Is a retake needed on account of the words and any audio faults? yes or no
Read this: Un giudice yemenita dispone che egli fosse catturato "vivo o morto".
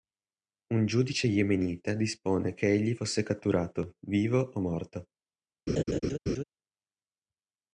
yes